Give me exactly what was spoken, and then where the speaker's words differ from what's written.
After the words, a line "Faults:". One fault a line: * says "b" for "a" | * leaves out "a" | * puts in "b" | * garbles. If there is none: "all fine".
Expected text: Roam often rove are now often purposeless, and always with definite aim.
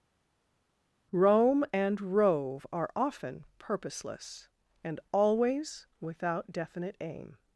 Roam and rove are often purposeless, and always without definite aim.
Faults:
* says "and" for "often"
* leaves out "now"
* says "without" for "with"